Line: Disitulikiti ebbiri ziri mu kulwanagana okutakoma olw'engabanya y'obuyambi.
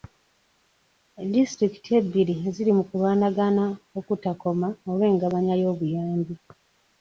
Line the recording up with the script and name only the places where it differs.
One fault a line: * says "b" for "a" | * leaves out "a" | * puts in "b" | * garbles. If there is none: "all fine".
all fine